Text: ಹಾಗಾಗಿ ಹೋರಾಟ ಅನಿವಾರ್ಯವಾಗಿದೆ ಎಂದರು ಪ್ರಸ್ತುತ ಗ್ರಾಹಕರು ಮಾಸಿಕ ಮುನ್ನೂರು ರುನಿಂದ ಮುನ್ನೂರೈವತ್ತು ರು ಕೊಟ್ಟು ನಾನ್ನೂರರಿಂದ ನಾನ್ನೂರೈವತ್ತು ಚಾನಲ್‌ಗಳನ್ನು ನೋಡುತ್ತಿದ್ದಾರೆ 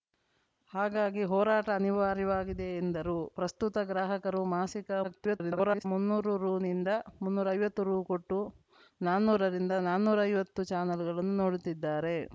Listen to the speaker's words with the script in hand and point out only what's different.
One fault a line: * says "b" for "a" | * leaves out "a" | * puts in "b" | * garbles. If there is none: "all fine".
* garbles